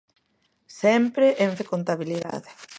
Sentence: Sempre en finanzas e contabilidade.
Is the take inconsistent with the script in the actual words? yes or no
yes